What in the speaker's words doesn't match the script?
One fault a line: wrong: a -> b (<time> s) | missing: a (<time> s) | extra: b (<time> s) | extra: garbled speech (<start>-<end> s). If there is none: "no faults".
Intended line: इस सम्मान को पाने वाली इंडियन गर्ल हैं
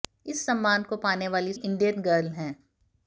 no faults